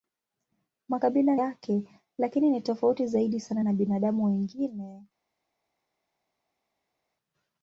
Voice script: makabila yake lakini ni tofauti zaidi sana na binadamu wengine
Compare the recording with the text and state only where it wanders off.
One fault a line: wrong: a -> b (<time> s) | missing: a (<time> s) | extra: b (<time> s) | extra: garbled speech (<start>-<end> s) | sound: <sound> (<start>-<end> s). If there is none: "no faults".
no faults